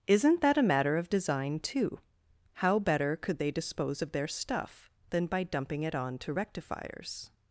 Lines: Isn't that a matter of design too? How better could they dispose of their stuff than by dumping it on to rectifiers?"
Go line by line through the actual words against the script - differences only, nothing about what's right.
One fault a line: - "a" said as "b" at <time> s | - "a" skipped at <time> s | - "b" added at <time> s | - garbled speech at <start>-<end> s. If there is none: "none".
none